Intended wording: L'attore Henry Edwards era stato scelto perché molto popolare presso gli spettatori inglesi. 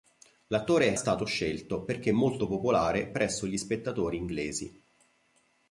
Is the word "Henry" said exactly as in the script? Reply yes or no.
no